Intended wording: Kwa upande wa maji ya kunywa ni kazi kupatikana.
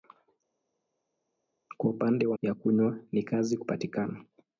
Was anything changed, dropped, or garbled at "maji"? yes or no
yes